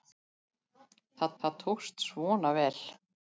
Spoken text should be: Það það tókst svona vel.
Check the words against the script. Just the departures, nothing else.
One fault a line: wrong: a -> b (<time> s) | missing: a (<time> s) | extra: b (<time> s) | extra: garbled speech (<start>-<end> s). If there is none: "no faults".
no faults